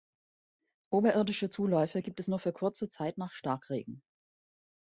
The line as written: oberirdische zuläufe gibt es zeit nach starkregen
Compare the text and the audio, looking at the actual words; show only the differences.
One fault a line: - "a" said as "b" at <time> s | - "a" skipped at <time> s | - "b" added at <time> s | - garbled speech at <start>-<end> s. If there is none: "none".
- "nur für kurze" added at 2.3 s